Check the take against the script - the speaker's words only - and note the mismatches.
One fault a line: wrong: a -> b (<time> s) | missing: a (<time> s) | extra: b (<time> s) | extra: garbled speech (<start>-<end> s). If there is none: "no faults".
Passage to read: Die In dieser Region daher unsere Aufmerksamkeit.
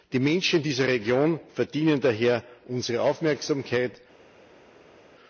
extra: Menschen (0.2 s)
extra: verdienen (1.5 s)